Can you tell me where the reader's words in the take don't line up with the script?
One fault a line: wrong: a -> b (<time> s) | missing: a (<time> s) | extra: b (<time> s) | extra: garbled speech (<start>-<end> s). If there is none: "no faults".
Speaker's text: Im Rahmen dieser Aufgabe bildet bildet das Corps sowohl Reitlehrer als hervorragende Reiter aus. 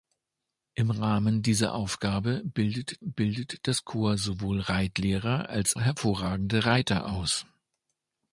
no faults